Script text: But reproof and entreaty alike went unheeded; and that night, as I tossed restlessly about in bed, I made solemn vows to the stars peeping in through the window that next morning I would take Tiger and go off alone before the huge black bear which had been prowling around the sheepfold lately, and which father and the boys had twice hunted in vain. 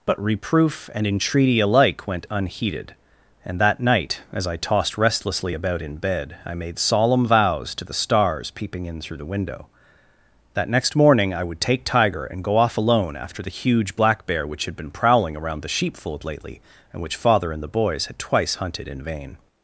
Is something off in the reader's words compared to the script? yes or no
yes